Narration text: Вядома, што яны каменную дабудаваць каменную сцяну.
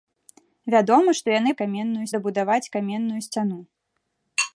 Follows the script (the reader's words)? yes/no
yes